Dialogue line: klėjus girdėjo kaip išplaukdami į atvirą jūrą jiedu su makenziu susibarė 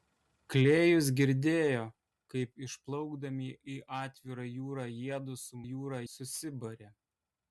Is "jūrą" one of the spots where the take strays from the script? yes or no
no